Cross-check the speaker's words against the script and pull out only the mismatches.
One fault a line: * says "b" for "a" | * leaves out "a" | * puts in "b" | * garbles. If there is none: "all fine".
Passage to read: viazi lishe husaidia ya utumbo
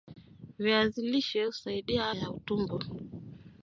all fine